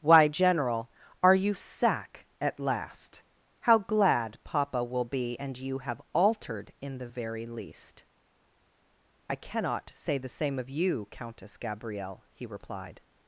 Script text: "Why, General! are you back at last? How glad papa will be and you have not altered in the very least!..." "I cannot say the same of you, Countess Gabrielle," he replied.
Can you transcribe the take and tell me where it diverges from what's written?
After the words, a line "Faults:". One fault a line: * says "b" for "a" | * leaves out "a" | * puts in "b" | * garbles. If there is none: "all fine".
"Why, General! are you sack at last? How glad papa will be and you have altered in the very least!..." "I cannot say the same of you, Countess Gabrielle," he replied.
Faults:
* says "sack" for "back"
* leaves out "not"